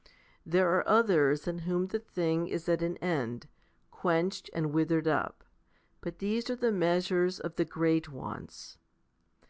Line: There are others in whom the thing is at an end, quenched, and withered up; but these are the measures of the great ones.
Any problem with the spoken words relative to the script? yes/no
no